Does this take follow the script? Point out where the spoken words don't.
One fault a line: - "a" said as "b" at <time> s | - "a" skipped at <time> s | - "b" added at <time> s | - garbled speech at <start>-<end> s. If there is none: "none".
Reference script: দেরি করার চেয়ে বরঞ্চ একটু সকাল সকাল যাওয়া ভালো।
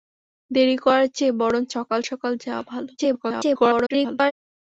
- "একটু" skipped at 1.7 s
- garbled speech at 3.0-4.3 s